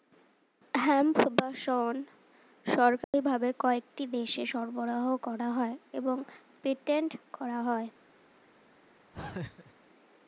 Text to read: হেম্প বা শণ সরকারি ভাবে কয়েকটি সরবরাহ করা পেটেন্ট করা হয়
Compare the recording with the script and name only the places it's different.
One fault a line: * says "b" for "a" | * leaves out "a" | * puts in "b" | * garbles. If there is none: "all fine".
* puts in "দেশে"
* puts in "হয় এবং"